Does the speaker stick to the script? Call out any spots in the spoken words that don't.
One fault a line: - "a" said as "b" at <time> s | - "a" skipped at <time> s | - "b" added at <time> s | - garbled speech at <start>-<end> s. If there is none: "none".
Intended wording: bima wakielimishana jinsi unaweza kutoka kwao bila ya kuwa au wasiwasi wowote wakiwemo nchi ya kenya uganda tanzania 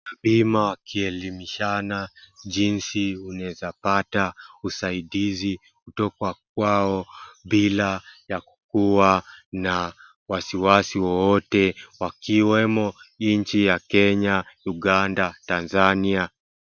- "pata usaidizi" added at 3.8 s
- "au" said as "na" at 9.5 s